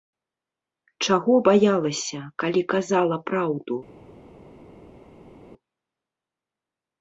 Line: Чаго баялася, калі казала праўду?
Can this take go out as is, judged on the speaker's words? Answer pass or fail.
pass